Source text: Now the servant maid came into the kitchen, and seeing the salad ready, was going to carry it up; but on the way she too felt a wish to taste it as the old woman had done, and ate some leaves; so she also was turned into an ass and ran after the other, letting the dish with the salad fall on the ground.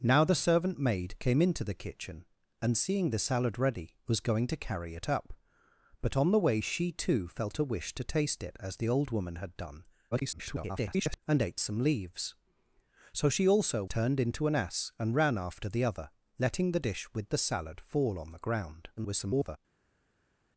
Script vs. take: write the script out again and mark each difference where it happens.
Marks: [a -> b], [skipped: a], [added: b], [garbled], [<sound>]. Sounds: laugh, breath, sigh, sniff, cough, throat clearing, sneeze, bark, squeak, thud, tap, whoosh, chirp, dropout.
Now the servant maid came into the kitchen, and seeing the salad ready, was going to carry it up; but on the way she too felt a wish to taste it as the old woman had done, [garbled] and ate some leaves; so she also [skipped: was] turned into an ass and ran after the other, letting the dish with the salad fall on the ground. [garbled]